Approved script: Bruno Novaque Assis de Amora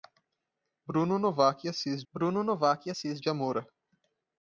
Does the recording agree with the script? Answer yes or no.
no